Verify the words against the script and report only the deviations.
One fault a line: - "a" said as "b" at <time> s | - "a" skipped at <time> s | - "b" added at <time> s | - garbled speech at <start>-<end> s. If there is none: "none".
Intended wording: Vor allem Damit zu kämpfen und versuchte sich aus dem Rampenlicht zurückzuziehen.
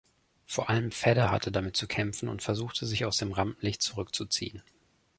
- "Vedder hatte" added at 0.9 s